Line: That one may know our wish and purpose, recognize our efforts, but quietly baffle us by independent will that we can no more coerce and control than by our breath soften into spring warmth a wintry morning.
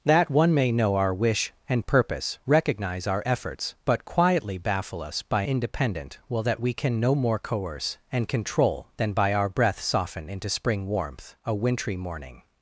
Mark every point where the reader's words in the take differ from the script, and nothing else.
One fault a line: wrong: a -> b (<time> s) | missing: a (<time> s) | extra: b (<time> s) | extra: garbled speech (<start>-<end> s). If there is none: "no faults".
no faults